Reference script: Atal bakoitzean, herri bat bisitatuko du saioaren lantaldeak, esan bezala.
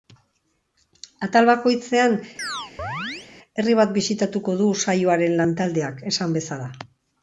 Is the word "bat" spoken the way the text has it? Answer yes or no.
yes